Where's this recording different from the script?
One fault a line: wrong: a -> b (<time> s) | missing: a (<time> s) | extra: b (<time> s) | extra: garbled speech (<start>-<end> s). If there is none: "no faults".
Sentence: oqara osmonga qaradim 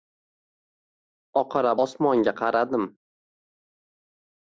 no faults